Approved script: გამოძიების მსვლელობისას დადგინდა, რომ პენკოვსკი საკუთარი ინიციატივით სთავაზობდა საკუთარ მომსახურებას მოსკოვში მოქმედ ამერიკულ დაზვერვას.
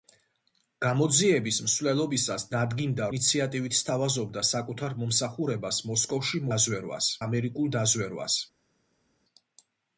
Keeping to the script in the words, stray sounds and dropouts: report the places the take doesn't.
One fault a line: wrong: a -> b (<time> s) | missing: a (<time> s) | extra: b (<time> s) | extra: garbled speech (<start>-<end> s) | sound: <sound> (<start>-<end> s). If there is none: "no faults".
missing: რომ პენკოვსკი საკუთარი (3.1 s)
wrong: მოქმედ -> დაზვერვას (6.5 s)